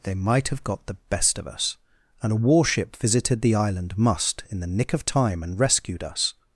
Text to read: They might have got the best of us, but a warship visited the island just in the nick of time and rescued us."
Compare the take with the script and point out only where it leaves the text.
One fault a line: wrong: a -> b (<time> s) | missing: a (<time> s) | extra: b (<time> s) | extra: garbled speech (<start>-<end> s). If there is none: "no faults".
wrong: but -> and (2.2 s)
wrong: just -> must (4.0 s)